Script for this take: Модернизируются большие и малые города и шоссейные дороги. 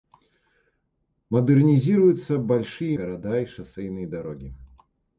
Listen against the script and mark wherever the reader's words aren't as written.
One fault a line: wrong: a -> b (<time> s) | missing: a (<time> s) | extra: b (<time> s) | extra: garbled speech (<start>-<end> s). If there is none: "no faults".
missing: малые (3.0 s)